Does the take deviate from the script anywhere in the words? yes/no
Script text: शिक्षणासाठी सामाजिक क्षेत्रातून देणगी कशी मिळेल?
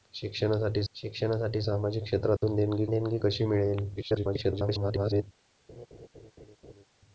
yes